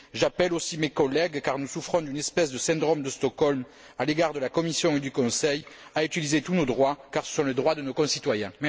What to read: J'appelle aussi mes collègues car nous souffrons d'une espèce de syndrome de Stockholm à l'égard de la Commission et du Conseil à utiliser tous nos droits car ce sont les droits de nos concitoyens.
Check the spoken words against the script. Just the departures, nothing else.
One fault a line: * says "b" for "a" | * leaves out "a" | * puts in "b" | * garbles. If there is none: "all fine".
all fine